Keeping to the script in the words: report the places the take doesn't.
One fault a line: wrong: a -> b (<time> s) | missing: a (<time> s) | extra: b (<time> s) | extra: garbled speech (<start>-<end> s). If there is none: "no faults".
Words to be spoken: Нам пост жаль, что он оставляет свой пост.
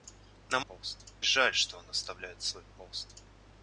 no faults